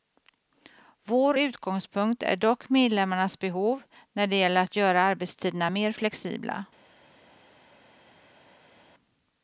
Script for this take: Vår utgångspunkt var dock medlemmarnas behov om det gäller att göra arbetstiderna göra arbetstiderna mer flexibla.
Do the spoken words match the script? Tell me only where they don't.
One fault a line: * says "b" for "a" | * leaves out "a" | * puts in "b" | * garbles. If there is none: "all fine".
* says "är" for "var"
* says "när" for "om"
* leaves out "göra arbetstiderna"